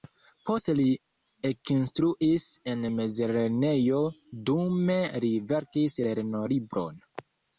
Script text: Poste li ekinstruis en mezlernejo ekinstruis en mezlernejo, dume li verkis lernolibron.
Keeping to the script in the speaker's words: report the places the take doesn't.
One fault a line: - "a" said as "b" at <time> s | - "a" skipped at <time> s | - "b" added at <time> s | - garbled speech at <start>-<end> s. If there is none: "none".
- "ekinstruis en mezlernejo" skipped at 4.0 s